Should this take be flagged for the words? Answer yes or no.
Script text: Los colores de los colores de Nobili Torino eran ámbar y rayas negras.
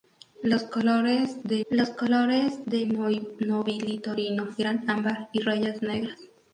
no